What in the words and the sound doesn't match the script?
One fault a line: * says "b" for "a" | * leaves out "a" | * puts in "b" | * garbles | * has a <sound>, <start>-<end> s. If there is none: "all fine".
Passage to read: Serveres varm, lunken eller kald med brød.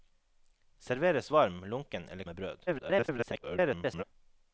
* leaves out "kald"
* garbles